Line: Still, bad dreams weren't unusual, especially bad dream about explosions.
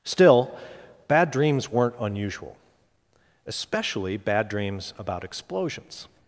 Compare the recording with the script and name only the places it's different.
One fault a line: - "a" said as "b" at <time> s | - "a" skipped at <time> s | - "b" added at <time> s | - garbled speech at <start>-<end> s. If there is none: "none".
- "dream" said as "dreams" at 4.5 s